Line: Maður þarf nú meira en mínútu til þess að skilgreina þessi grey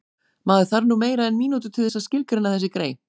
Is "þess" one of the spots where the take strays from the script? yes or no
no